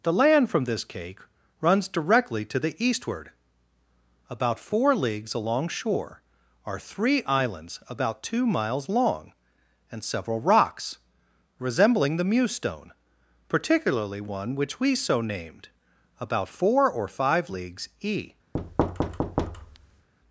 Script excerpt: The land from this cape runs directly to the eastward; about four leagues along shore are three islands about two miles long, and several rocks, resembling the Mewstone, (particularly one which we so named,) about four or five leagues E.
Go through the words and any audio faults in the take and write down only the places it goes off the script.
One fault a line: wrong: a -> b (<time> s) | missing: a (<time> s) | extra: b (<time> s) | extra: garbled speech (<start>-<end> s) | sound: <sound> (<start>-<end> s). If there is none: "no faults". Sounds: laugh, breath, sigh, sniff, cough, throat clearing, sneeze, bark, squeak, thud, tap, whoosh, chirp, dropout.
wrong: cape -> cake (0.8 s)
sound: thud (18.5-20.1 s)